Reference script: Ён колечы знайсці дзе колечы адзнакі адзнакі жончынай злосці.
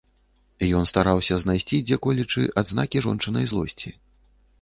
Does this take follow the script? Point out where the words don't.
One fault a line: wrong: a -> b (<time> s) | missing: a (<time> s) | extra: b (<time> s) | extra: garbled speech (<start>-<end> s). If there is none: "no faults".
wrong: колечы -> стараўся (0.9 s)
missing: адзнакі (3.0 s)